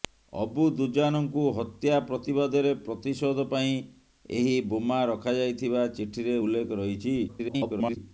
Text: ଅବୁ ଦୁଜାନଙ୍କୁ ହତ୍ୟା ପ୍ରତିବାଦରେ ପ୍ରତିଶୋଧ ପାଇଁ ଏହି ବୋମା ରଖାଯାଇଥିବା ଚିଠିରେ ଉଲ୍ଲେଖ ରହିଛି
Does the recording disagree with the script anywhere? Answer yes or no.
yes